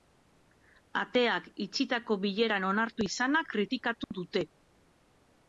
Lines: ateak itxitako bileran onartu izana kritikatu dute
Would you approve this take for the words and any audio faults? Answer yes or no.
no